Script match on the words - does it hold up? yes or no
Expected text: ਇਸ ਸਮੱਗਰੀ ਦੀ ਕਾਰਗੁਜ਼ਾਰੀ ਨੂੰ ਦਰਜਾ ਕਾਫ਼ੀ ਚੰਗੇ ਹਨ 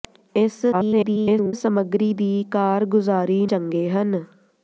no